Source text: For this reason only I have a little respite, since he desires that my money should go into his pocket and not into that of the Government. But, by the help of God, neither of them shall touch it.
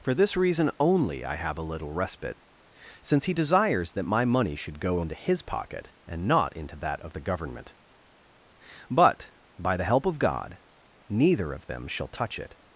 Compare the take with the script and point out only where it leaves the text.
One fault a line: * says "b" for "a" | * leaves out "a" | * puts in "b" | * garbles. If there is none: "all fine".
all fine